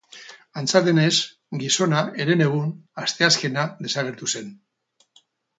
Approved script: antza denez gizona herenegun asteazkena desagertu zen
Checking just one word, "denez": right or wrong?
right